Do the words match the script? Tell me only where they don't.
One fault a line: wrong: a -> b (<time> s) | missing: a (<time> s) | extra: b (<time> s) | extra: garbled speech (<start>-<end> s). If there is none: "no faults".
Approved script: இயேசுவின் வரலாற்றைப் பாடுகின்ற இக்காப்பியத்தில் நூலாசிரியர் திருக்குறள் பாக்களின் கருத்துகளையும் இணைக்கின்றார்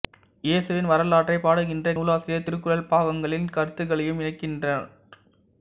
missing: இக்காப்பியத்தில் (1.9 s)